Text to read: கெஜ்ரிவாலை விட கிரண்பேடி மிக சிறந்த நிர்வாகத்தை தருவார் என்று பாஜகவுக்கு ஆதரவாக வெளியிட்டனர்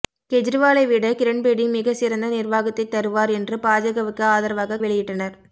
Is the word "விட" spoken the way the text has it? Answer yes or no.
yes